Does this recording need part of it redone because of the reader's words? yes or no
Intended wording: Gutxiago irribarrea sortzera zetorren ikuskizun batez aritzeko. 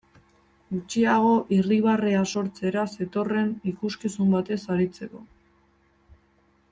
no